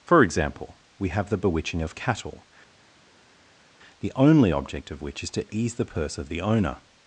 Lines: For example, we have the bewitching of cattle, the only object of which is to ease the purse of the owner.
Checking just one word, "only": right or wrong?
right